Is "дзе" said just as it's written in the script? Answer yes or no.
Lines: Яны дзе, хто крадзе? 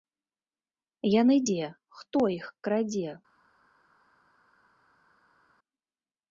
yes